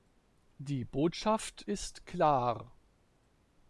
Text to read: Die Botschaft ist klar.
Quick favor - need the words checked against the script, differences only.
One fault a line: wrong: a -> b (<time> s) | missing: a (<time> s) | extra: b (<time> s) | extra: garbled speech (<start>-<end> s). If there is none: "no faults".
no faults